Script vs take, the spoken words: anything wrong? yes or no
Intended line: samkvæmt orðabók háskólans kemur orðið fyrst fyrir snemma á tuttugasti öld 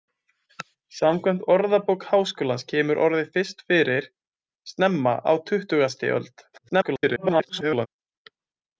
yes